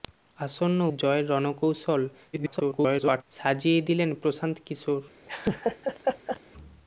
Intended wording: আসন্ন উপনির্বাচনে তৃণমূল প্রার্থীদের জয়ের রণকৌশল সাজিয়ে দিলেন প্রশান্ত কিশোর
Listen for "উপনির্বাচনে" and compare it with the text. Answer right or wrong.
wrong